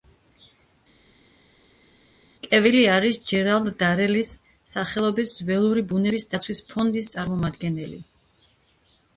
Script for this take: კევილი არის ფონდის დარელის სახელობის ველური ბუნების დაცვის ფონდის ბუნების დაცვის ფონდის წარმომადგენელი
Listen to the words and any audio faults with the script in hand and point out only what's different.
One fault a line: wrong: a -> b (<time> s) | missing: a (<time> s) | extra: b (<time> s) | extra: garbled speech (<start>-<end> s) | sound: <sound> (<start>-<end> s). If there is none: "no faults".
wrong: ფონდის -> ჯერალდ (3.3 s)
missing: ბუნების დაცვის ფონდის (7.1 s)